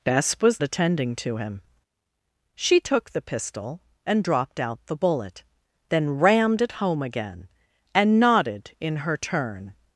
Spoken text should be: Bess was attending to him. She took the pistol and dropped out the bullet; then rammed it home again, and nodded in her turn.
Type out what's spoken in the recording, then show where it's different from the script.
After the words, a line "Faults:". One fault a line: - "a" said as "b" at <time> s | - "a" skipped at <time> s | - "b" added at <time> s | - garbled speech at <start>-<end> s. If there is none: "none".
Bess was attending to him. She took the pistol and dropped out the bullet; then rammed it home again, and nodded in her turn.
Faults:
none